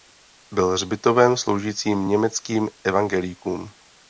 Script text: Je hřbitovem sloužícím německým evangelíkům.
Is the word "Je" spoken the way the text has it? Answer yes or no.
no